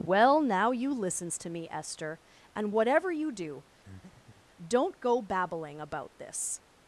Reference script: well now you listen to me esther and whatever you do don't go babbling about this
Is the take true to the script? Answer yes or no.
no